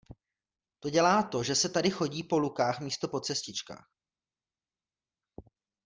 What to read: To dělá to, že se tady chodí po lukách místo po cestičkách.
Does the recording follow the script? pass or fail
pass